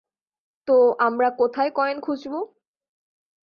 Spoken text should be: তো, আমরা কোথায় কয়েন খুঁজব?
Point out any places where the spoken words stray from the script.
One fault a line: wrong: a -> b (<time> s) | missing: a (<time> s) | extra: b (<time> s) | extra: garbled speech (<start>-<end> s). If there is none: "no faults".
no faults